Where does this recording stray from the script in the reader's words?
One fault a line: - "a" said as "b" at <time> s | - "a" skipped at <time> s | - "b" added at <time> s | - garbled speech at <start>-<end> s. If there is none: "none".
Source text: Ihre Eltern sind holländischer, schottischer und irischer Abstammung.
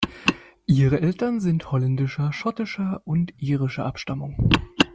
none